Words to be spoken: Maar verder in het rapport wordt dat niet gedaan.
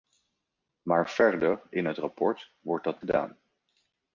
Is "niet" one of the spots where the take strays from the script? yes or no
yes